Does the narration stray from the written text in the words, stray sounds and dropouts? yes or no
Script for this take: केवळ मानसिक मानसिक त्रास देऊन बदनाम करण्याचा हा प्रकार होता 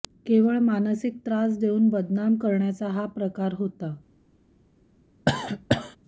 yes